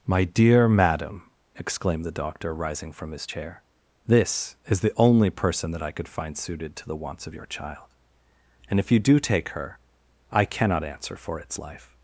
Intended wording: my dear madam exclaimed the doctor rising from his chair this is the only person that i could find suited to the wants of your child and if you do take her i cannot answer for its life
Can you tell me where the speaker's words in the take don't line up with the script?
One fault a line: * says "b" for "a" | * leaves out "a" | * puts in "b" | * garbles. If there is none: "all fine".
all fine